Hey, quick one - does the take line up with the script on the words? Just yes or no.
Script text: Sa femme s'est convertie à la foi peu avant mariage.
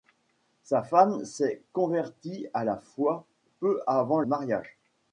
yes